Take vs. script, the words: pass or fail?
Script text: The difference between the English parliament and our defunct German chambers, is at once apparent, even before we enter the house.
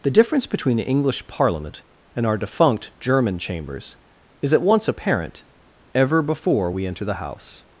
fail